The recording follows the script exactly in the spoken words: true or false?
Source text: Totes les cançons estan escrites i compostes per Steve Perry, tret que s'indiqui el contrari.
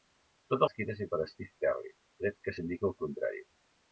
false